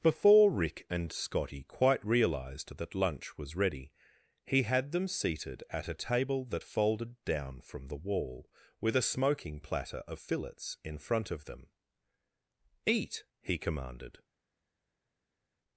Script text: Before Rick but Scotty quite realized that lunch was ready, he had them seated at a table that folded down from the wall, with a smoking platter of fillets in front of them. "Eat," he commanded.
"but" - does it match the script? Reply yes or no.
no